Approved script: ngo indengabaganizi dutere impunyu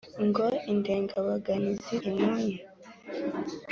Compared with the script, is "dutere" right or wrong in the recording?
wrong